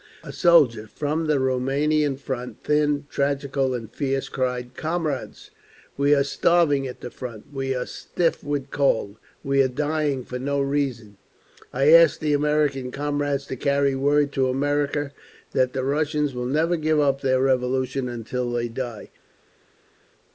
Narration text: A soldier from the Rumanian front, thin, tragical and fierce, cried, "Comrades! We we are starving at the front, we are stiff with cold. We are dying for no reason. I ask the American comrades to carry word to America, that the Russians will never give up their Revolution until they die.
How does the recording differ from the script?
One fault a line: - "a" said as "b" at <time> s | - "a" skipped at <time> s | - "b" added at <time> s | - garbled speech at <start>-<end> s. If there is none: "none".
- "we" skipped at 6.2 s